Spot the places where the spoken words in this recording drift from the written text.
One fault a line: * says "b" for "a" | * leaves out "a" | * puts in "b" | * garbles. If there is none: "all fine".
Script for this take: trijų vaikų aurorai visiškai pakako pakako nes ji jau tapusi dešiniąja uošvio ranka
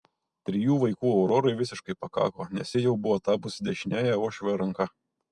* leaves out "pakako"
* puts in "buvo"